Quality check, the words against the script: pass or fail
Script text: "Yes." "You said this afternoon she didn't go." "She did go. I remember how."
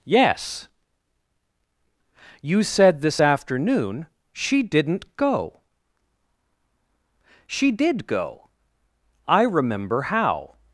pass